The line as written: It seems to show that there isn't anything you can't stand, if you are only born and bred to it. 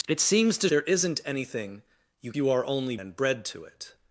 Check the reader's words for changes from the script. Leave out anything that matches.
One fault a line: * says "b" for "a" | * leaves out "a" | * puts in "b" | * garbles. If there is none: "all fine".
* leaves out "show that"
* leaves out "can't stand if"
* leaves out "born"